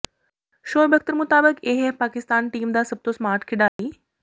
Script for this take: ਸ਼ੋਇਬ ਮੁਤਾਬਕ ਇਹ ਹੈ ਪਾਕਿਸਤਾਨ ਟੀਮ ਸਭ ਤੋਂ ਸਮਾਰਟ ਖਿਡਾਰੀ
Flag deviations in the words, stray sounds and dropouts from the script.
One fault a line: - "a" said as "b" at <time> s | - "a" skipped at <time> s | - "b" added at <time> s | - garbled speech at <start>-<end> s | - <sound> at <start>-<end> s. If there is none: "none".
- "ਅਖਤਰ" added at 0.9 s
- "ਦਾ" added at 2.7 s
- dropout at 3.7-3.8 s